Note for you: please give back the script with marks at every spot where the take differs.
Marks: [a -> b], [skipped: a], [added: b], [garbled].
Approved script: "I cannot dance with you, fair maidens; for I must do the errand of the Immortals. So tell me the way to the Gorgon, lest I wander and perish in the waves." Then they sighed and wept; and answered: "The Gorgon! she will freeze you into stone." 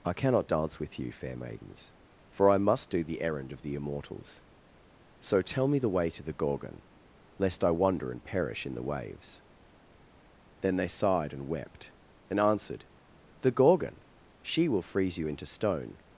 "I cannot dance with you, fair maidens; for I must do the errand of the Immortals. So tell me the way to the Gorgon, lest I wander and perish in the waves." Then they sighed and wept; and answered: "The Gorgon! she will freeze you into stone."